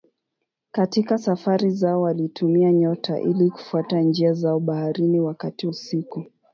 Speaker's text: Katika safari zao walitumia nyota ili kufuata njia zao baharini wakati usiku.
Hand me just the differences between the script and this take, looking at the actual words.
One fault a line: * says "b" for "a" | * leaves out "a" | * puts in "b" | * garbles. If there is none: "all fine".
all fine